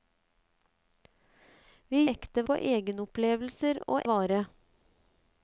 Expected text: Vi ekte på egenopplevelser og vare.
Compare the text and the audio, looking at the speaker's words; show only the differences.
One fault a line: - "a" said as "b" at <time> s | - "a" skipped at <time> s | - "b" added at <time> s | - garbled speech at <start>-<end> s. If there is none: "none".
none